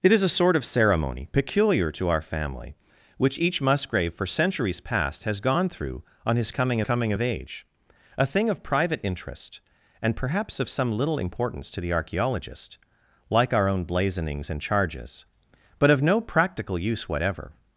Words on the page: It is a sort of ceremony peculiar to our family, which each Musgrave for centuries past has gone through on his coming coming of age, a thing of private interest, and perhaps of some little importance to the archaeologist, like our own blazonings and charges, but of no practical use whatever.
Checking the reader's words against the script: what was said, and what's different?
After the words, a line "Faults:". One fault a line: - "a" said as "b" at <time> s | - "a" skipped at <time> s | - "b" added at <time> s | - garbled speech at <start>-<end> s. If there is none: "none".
It is a sort of ceremony peculiar to our family, which each Musgrave for centuries past has gone through on his coming coming of age, a thing of private interest, and perhaps of some little importance to the archaeologist, like our own blazonings and charges, but of no practical use whatever.
Faults:
none